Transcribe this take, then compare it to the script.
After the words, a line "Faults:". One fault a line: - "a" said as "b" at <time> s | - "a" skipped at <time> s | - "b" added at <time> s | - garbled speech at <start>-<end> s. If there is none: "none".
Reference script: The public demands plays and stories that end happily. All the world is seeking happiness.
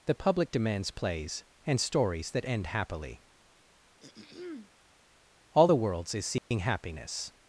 The public demands plays and stories that end happily. All the worlds is seeking happiness.
Faults:
- "world" said as "worlds" at 5.8 s